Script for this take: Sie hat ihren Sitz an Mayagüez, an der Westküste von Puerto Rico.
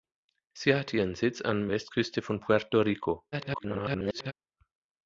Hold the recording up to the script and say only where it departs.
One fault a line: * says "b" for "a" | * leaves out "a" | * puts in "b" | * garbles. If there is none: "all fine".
* leaves out "Mayagüez an der"
* garbles